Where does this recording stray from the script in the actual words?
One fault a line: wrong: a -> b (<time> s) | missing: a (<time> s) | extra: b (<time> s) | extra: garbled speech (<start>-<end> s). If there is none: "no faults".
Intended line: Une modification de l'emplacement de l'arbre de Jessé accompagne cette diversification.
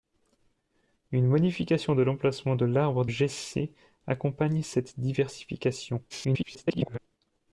missing: de (3.0 s)
extra: garbled speech (6.1-7.0 s)